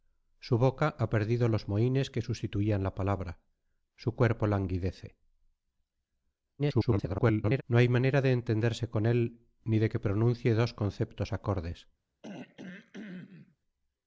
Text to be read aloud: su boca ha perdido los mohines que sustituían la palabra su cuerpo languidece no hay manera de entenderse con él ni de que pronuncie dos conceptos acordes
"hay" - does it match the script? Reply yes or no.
yes